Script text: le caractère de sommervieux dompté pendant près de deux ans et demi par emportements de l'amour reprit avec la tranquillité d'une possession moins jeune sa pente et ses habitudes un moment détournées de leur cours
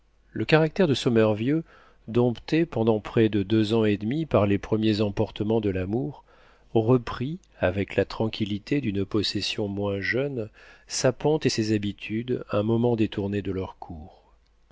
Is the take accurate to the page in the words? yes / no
no